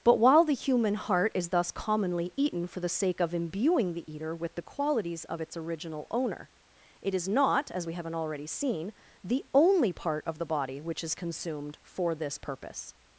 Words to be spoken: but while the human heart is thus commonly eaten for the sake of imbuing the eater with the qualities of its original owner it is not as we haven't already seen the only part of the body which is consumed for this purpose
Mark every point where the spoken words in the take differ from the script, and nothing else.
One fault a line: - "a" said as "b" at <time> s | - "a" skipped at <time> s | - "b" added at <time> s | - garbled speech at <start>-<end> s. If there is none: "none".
none